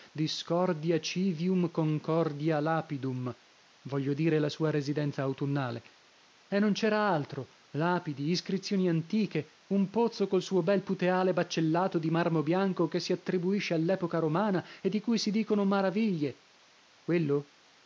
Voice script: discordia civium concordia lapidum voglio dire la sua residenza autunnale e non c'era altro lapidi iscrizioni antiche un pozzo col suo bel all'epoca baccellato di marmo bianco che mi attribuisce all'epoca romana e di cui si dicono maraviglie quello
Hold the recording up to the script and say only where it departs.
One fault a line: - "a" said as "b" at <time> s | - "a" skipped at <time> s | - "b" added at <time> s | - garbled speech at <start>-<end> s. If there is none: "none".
- "all'epoca" said as "puteale" at 10.8 s
- "mi" said as "si" at 13.0 s